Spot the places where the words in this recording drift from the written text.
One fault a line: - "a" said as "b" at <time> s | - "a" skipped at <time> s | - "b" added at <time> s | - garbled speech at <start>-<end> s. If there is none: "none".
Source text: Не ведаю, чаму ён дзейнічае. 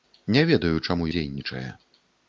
- "ён" skipped at 1.1 s